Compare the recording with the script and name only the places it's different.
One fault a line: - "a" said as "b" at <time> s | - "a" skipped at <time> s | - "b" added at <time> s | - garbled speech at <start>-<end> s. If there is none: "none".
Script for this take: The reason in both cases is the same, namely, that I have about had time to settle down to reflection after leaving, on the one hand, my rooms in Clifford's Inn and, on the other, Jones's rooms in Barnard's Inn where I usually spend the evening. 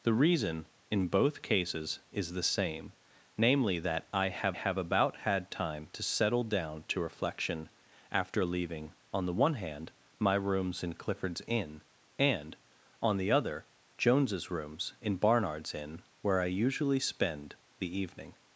- "have" added at 4.5 s